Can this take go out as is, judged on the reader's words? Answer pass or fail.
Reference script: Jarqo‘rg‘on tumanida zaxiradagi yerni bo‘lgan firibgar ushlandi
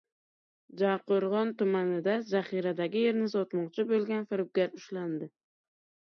fail